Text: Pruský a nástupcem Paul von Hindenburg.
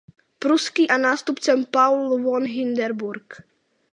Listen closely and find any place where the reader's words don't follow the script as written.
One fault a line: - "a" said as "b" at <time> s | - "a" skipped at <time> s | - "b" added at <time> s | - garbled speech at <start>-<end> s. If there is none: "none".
none